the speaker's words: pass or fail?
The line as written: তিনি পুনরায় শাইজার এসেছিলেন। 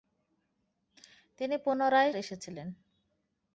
fail